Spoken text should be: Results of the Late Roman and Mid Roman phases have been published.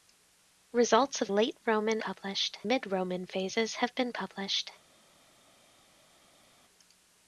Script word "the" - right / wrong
wrong